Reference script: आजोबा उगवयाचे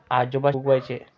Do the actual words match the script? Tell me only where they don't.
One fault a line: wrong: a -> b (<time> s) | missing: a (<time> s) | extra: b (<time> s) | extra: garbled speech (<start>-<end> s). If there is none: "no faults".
no faults